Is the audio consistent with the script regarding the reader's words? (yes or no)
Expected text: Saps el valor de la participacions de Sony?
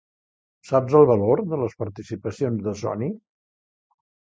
no